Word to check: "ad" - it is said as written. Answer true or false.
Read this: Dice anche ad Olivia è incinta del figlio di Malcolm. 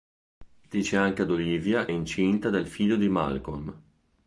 true